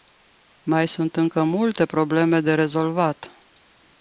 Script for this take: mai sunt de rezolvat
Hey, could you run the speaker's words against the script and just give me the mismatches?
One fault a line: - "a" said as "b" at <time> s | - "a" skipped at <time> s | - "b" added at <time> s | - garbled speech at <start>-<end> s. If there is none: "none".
- "încă multe probleme" added at 1.1 s